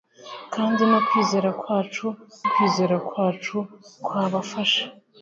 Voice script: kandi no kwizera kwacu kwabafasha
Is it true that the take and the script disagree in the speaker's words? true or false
true